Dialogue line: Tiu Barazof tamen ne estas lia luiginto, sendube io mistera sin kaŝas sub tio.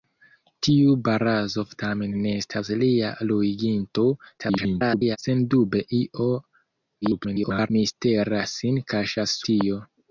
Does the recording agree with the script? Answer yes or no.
no